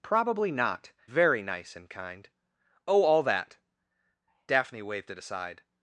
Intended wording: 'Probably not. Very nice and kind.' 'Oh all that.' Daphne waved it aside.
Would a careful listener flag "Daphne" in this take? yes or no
no